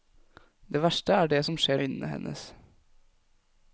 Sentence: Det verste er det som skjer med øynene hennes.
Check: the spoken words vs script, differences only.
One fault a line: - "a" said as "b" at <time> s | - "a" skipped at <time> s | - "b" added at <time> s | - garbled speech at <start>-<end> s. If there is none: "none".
- "med" skipped at 1.8 s